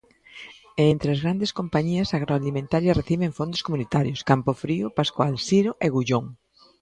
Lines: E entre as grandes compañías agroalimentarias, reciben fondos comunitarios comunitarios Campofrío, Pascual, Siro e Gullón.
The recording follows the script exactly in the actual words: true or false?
false